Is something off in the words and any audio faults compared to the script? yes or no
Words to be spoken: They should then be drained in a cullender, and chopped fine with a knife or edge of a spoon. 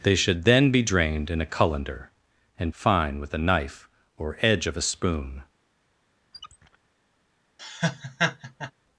yes